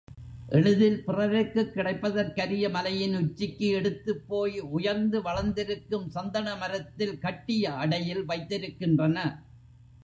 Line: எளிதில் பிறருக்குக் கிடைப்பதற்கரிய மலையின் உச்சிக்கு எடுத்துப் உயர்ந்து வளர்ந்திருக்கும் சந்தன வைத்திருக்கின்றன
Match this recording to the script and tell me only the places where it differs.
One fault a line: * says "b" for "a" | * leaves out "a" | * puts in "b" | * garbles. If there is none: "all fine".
* puts in "போய்"
* puts in "மரத்தில் கட்டிய அடையில்"